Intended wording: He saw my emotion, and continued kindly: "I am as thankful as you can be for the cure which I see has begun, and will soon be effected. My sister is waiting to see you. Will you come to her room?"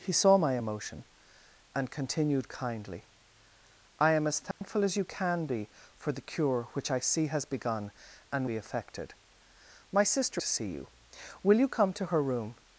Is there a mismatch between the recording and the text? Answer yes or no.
yes